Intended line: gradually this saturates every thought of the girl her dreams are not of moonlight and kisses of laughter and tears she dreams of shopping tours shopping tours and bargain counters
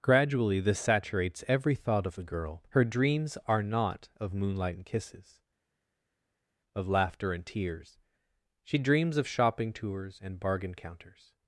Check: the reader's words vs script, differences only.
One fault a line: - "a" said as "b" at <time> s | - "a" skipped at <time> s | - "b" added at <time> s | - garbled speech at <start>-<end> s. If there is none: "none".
- "shopping tours" skipped at 10.2 s